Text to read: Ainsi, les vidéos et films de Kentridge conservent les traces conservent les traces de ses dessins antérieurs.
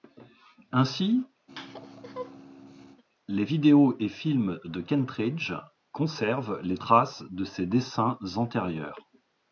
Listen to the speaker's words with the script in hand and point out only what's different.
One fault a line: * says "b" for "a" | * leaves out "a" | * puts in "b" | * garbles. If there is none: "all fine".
* leaves out "conservent les traces"